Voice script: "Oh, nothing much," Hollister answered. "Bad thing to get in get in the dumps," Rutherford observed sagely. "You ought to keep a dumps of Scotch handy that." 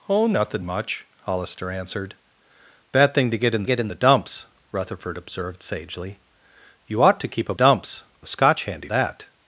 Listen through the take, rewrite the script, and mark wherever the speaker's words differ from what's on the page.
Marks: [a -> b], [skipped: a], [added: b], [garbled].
"Oh, nothing much," Hollister answered. "Bad thing to get in get in the dumps," Rutherford observed sagely. "You ought to keep a dumps of Scotch handy that."